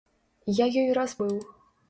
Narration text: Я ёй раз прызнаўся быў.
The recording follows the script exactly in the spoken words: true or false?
false